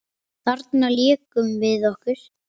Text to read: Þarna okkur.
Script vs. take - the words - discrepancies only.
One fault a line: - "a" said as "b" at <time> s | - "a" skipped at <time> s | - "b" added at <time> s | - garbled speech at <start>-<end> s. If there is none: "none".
- "lékum við" added at 0.9 s